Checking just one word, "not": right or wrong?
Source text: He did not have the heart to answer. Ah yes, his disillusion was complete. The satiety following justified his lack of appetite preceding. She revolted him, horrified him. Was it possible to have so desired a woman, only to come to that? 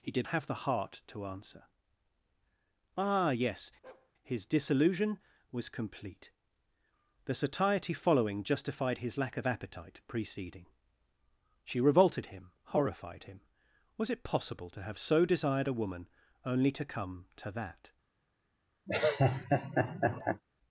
wrong